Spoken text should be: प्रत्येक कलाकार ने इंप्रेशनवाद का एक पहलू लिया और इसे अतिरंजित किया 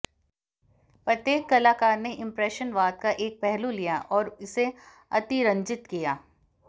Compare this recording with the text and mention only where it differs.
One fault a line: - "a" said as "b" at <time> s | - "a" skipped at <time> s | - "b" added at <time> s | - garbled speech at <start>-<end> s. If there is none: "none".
none